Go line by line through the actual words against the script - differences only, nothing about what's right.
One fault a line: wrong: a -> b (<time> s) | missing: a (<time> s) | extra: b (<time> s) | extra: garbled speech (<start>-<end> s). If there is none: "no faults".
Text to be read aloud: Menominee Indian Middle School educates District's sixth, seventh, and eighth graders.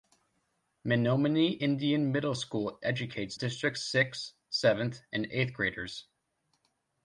no faults